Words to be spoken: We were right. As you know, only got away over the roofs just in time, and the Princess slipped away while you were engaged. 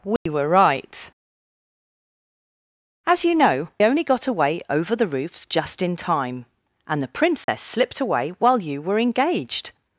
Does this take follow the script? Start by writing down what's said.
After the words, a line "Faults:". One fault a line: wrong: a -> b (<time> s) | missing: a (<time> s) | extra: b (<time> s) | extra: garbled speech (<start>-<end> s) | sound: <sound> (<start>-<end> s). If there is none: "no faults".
We were right. As you know, only got away over the roofs just in time, and the Princess slipped away while you were engaged.
Faults:
sound: dropout (0.2-0.3 s)
sound: dropout (7.4-7.5 s)